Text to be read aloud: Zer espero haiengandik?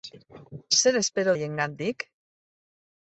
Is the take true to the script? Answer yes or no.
yes